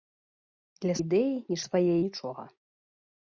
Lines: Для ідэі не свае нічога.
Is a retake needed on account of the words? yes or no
no